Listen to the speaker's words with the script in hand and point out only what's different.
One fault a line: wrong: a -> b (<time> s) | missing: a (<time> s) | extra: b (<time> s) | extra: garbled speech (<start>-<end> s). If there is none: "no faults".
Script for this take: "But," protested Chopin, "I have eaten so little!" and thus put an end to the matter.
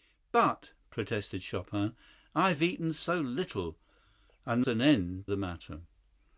missing: thus put (4.7 s)
missing: to (5.3 s)